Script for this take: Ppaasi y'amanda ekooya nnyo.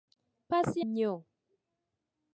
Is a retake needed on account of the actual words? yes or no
yes